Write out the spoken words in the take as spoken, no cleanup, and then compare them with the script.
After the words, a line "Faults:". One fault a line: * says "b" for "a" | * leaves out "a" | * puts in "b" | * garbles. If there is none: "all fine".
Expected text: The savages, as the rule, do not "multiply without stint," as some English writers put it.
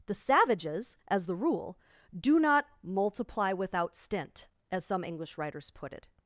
The savages, as the rule, do not "multiply without stint," as some English writers put it.
Faults:
all fine